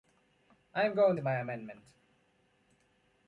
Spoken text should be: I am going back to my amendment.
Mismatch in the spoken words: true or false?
true